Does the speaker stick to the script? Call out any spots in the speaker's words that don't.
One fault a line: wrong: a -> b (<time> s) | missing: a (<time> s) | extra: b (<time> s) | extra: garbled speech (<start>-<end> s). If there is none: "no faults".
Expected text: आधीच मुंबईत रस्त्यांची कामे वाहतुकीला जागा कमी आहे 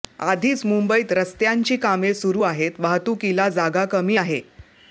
extra: सुरू आहेत (2.1 s)